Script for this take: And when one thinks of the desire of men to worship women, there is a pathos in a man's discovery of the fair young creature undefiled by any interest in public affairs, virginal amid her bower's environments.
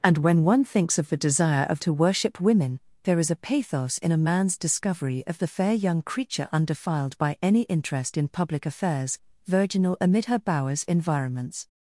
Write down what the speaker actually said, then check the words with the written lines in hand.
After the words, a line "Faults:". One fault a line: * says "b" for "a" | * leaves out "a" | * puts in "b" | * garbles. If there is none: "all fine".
And when one thinks of the desire of to worship women, there is a pathos in a man's discovery of the fair young creature undefiled by any interest in public affairs, virginal amid her bower's environments.
Faults:
* leaves out "men"